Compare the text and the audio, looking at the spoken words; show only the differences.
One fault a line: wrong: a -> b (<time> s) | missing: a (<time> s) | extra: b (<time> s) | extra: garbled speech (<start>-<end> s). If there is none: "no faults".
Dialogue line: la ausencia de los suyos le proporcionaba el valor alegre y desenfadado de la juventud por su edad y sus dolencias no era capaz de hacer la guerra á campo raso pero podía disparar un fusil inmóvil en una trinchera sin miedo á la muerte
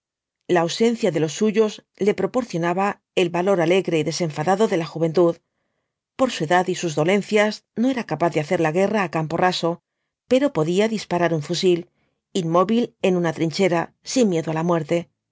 no faults